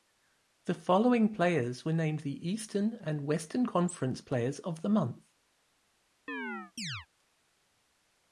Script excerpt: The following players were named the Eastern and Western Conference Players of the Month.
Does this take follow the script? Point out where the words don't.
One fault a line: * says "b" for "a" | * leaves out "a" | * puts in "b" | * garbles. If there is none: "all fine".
all fine